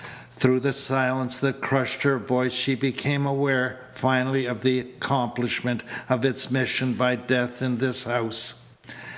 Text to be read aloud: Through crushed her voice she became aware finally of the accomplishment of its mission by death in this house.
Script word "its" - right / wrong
right